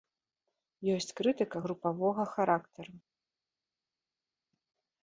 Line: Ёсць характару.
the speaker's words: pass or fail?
fail